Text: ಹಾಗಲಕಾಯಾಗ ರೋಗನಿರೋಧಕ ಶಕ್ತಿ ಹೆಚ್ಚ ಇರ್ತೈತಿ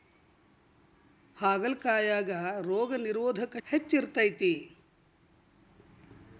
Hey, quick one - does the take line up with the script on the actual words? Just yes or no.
no